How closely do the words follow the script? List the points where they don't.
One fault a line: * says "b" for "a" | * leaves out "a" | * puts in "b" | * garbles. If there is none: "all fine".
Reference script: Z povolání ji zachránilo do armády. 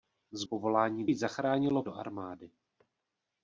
all fine